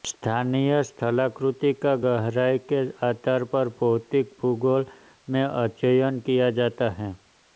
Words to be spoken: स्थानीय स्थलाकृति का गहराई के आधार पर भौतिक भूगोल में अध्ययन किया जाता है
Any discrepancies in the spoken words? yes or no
no